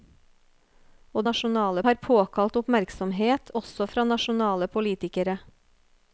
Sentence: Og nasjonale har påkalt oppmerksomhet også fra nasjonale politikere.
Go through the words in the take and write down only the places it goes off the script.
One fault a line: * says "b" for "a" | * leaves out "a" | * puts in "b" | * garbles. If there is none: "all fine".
all fine